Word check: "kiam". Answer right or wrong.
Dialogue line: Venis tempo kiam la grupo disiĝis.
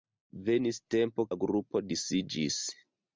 wrong